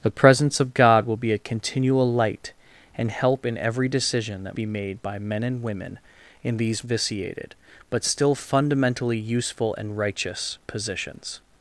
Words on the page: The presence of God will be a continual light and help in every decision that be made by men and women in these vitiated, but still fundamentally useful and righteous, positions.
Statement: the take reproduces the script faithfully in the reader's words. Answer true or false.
true